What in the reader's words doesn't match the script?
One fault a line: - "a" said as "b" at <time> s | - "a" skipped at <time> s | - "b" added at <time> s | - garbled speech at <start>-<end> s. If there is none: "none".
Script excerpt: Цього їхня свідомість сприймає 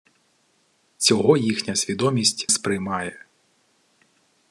none